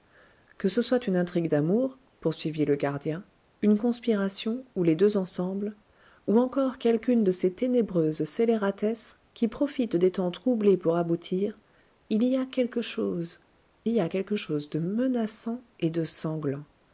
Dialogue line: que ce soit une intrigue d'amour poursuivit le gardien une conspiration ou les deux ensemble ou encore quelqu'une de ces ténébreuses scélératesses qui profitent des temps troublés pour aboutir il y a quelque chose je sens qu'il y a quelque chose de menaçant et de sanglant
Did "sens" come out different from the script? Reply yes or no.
yes